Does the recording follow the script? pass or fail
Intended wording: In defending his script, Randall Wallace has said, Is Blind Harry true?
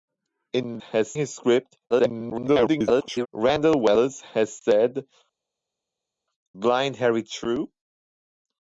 fail